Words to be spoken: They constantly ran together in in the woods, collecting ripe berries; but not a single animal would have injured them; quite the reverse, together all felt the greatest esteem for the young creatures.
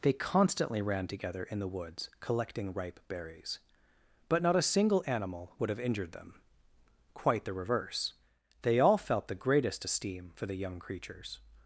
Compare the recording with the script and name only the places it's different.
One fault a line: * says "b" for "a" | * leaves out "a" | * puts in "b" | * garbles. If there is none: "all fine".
* leaves out "in"
* says "they" for "together"